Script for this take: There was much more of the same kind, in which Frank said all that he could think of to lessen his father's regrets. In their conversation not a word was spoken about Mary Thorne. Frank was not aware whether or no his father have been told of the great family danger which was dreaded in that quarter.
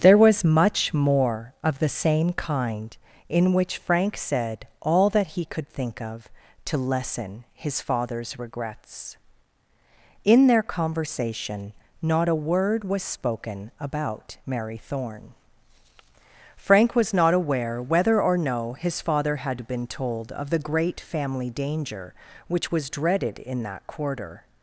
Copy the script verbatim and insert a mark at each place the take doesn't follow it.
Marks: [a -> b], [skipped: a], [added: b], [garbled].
There was much more of the same kind, in which Frank said all that he could think of to lessen his father's regrets. In their conversation not a word was spoken about Mary Thorne. Frank was not aware whether or no his father [have -> had] been told of the great family danger which was dreaded in that quarter.